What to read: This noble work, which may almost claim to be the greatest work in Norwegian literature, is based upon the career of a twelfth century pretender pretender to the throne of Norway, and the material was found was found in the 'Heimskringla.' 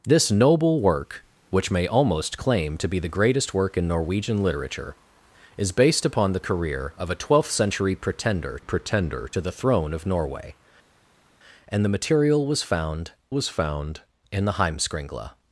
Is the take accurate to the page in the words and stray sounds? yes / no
yes